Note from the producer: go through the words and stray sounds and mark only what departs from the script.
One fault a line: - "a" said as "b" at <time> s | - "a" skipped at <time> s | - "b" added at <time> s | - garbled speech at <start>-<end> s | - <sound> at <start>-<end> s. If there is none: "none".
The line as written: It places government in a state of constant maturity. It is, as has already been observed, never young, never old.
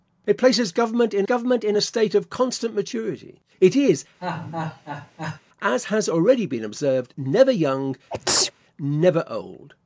- "government in" added at 1.2 s
- laugh at 4.2-5.4 s
- sneeze at 8.1-8.5 s